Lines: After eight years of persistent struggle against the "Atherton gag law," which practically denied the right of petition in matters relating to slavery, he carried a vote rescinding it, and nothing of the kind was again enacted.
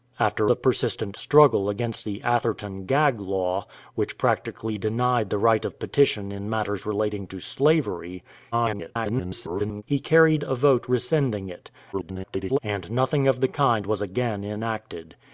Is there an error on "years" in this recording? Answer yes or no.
yes